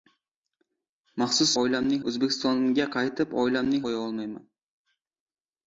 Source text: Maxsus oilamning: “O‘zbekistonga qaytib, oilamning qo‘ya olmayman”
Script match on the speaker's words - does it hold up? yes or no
yes